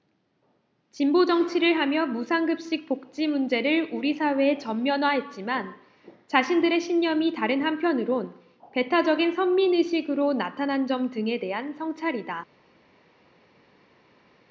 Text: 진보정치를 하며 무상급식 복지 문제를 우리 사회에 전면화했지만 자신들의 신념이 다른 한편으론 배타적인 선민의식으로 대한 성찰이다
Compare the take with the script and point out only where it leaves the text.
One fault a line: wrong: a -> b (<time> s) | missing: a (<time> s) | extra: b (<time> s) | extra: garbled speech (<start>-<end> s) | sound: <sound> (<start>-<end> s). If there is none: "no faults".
extra: 나타난 점 등에 (10.3 s)